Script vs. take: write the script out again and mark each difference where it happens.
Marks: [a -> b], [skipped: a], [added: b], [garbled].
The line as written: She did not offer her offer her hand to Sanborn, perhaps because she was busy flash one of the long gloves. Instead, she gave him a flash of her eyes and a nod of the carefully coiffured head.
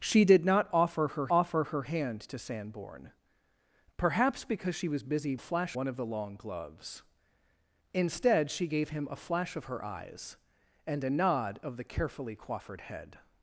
She did not offer her offer her hand to Sanborn, perhaps because she was busy flash one of the long gloves. Instead, she gave him a flash of her eyes and a nod of the carefully coiffured head.